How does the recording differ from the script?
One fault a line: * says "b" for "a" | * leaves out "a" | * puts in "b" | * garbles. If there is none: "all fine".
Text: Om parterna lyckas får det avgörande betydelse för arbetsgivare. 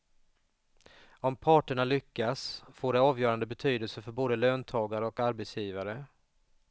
* puts in "både löntagare och"